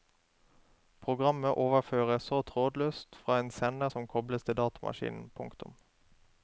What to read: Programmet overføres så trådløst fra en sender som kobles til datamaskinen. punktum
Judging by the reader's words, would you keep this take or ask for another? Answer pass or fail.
pass